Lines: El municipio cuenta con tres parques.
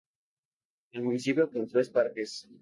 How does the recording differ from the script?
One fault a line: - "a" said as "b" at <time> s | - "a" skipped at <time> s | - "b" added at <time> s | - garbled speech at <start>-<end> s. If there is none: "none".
- "cuenta" skipped at 1.5 s